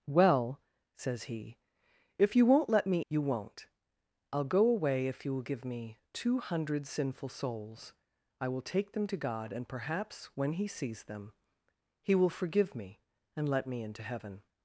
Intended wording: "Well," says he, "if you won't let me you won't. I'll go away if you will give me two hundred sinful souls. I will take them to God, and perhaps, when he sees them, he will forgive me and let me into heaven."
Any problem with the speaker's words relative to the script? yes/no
no